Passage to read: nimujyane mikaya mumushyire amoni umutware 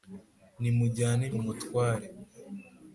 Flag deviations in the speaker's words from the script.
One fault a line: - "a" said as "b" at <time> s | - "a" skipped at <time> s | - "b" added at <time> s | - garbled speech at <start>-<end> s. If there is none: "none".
- "mikaya mumushyire amoni" skipped at 1.2 s